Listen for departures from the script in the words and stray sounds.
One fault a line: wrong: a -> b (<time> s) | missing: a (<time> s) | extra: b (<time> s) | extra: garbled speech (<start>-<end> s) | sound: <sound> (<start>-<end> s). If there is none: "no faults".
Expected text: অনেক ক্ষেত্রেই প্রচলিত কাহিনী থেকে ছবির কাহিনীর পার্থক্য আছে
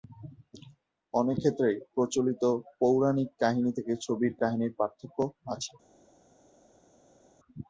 extra: পৌরাণিক (2.8 s)